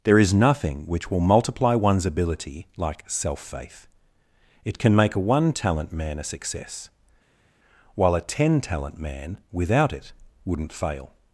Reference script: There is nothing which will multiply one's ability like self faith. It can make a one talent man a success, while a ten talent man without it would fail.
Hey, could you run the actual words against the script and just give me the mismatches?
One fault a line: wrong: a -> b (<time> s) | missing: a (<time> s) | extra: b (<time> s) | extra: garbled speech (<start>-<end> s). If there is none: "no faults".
wrong: would -> wouldn't (10.5 s)